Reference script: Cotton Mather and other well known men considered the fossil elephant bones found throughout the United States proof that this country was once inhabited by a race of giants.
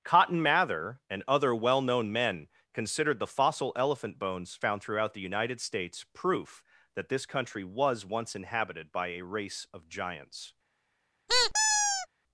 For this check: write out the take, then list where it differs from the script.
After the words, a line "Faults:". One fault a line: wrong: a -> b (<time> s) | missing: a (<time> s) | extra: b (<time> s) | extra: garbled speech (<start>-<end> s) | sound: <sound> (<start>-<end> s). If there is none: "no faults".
Cotton Mather and other well known men considered the fossil elephant bones found throughout the United States proof that this country was once inhabited by a race of giants.
Faults:
sound: squeak (11.3-12.1 s)